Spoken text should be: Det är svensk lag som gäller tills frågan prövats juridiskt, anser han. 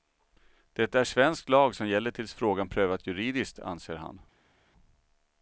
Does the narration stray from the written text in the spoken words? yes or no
no